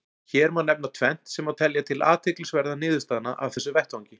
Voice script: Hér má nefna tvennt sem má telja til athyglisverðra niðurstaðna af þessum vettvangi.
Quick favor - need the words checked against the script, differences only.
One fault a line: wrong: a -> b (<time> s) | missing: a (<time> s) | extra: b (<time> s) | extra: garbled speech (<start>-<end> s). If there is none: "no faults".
no faults